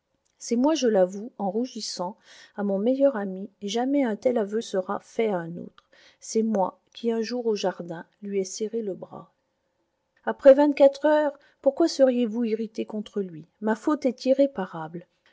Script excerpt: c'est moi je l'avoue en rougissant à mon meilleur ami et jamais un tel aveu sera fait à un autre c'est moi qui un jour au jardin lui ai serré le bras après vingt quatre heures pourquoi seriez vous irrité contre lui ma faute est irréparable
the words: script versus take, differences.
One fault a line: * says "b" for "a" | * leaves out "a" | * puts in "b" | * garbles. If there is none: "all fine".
all fine